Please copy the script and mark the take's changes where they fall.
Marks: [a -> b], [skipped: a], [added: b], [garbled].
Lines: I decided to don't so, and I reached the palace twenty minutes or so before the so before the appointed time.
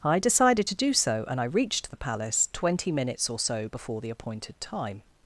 I decided to [don't -> do] so, and I reached the palace twenty minutes or so before the [skipped: so before the] appointed time.